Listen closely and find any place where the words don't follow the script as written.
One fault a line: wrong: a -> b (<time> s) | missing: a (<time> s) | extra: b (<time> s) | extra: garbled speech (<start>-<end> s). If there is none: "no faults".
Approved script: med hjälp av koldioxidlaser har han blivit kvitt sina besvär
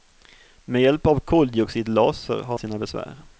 missing: han blivit kvitt (2.6 s)